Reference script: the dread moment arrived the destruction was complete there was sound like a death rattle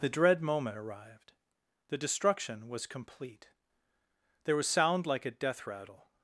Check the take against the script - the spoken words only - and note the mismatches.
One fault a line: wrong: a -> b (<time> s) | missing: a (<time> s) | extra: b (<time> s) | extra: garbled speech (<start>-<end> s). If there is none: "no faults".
no faults